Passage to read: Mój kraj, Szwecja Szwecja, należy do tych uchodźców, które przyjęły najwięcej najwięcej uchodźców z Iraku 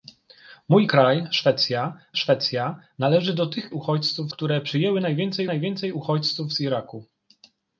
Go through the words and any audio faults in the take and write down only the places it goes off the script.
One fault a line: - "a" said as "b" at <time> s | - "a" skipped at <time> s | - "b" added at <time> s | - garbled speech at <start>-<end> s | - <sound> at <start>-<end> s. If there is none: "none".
none